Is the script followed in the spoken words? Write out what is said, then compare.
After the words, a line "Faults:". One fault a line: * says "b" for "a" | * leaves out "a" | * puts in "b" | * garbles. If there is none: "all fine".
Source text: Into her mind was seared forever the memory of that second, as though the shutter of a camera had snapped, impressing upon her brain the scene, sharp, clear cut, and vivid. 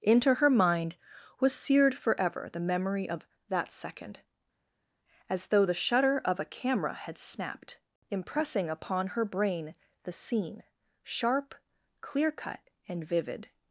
Into her mind was seared forever the memory of that second, as though the shutter of a camera had snapped, impressing upon her brain the scene, sharp, clear cut, and vivid.
Faults:
all fine